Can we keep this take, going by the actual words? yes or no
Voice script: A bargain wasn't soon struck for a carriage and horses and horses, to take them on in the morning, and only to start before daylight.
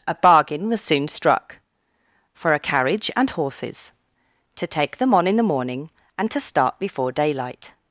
no